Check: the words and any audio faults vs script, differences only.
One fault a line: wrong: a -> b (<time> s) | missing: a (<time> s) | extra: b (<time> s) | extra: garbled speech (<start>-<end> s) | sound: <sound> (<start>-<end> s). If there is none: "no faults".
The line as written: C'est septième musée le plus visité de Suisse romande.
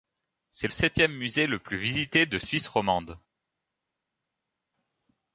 no faults